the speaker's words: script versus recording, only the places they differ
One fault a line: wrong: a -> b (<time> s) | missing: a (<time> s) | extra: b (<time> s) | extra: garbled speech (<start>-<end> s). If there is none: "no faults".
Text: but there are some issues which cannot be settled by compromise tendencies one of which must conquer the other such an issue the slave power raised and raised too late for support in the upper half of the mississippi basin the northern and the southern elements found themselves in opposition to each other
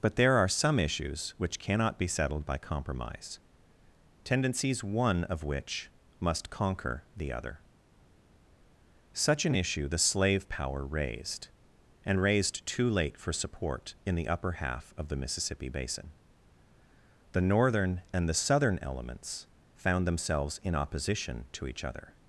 no faults